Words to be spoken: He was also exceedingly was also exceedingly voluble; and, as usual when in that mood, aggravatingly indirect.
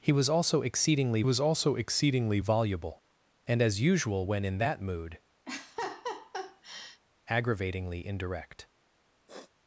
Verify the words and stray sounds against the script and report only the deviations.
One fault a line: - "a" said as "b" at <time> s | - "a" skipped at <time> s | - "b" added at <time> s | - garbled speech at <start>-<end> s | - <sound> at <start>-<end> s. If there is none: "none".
- laugh at 5.5-7.0 s
- sniff at 9.3-9.5 s